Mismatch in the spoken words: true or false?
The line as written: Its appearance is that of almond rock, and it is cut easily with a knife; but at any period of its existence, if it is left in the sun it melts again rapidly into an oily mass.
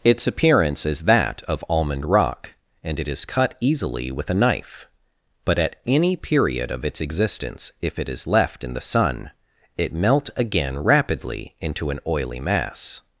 true